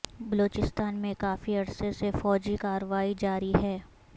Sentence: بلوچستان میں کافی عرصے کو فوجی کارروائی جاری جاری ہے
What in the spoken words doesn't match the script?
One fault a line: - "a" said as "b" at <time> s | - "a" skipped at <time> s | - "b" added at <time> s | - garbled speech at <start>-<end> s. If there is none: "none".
- "کو" said as "سے" at 1.9 s
- "جاری" skipped at 3.5 s